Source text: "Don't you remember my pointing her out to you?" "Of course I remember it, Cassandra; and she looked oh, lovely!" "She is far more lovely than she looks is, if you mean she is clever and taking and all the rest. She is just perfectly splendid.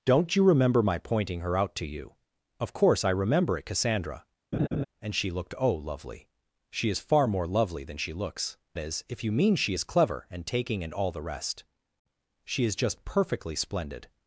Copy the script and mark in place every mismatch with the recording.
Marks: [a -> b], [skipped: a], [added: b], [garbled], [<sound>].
"Don't you remember my pointing her out to you?" "Of course I remember it, Cassandra; [laugh] and she looked oh, lovely!" "She is far more lovely than she looks is, if you mean she is clever and taking and all the rest. She is just perfectly splendid.